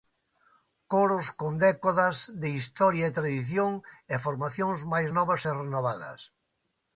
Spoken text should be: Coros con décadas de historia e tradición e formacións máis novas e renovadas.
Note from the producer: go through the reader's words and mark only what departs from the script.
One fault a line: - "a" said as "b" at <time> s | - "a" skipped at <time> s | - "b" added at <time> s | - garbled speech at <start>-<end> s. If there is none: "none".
none